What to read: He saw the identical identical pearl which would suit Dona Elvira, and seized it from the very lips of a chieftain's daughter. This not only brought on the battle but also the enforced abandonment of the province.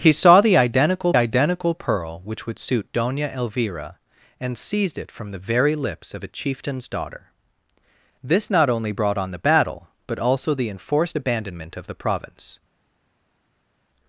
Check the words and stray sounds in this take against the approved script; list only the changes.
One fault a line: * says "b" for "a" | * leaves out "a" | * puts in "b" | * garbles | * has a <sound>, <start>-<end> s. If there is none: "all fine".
all fine